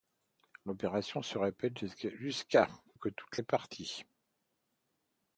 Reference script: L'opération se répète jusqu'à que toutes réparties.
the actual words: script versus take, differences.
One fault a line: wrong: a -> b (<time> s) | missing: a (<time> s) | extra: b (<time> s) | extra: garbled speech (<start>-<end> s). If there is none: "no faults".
no faults